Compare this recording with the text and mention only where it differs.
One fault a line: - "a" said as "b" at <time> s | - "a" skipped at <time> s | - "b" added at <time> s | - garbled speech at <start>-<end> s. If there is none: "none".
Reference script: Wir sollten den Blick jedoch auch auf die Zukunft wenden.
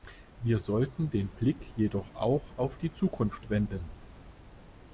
none